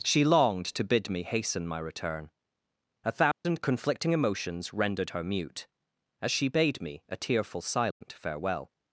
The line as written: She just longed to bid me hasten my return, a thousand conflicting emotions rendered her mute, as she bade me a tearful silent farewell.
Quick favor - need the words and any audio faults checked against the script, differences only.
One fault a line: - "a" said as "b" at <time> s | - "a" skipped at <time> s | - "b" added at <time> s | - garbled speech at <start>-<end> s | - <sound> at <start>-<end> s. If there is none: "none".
- "just" skipped at 0.2 s
- dropout at 3.3-3.4 s
- dropout at 7.9-8.0 s